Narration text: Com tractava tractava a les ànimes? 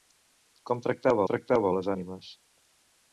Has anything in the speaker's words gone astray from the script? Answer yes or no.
no